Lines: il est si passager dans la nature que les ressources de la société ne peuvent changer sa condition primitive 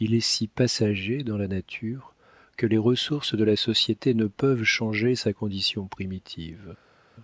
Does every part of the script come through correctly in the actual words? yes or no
yes